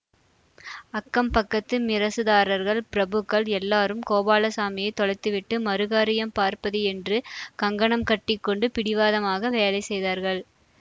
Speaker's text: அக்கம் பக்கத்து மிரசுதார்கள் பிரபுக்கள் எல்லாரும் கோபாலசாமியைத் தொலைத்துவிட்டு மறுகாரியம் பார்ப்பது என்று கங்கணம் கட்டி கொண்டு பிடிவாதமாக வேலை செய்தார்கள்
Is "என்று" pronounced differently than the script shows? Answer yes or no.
no